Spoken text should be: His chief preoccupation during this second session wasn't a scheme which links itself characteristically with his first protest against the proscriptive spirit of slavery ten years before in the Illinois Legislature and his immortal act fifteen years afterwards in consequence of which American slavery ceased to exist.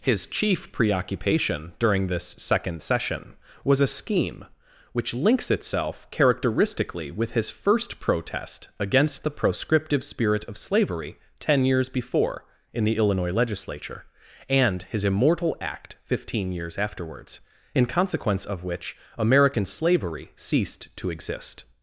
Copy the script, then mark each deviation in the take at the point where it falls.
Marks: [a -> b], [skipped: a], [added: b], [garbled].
His chief preoccupation during this second session [wasn't -> was] a scheme which links itself characteristically with his first protest against the proscriptive spirit of slavery ten years before in the Illinois Legislature and his immortal act fifteen years afterwards in consequence of which American slavery ceased to exist.